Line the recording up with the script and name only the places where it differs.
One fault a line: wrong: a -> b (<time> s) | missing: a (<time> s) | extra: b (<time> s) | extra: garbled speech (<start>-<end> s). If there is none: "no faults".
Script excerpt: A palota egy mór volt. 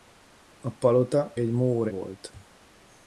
no faults